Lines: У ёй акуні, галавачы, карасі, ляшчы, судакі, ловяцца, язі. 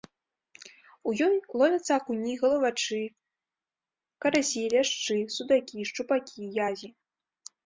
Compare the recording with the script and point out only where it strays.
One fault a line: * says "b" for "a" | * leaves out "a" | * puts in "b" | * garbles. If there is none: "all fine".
* puts in "ловяцца"
* says "шчупакі" for "ловяцца"